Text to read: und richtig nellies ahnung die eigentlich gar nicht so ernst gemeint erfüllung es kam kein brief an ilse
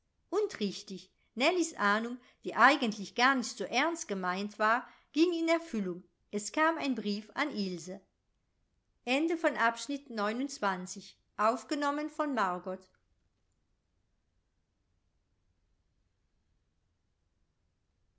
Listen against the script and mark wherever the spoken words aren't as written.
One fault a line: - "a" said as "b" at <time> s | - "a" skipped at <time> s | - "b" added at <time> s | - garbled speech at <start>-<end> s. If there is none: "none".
- "war ging in" added at 4.6 s
- "kein" said as "ein" at 6.8 s